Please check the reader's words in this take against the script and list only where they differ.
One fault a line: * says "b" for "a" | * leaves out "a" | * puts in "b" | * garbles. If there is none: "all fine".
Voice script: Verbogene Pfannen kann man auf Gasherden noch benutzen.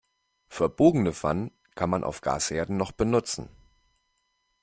all fine